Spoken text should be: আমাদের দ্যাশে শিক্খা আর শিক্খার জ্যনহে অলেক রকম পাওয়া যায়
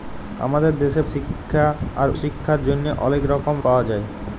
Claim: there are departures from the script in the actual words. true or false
false